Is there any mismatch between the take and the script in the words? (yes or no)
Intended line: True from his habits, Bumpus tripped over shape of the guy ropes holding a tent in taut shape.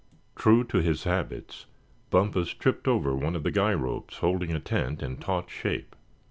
yes